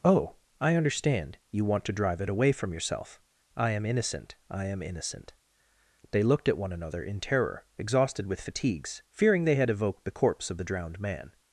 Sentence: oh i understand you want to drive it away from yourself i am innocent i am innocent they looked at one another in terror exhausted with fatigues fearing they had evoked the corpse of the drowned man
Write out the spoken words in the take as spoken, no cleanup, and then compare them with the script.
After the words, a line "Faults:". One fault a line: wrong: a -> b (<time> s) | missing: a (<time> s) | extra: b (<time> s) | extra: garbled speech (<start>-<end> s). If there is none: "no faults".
oh i understand you want to drive it away from yourself i am innocent i am innocent they looked at one another in terror exhausted with fatigues fearing they had evoked the corpse of the drowned man
Faults:
no faults